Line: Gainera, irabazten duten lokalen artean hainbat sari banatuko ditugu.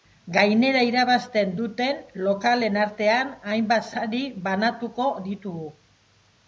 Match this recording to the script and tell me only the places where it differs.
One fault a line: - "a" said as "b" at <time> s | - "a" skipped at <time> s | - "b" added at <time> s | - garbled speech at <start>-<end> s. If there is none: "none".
none